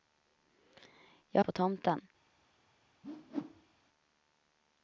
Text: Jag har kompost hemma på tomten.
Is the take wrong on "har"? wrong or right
wrong